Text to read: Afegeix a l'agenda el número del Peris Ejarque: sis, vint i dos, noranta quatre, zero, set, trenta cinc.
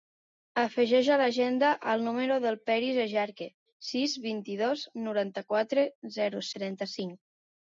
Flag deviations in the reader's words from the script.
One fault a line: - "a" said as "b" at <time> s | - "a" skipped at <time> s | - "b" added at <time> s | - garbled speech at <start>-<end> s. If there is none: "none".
- "set" skipped at 6.5 s